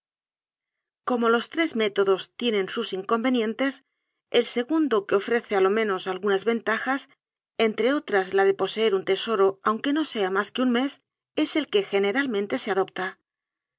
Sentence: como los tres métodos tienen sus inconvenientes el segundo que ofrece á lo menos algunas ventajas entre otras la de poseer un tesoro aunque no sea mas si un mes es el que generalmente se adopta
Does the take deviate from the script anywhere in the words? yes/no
yes